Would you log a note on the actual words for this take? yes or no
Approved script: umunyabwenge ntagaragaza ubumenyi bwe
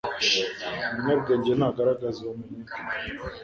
no